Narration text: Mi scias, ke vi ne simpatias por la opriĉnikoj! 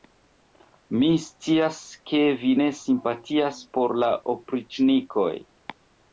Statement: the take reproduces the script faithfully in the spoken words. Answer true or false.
true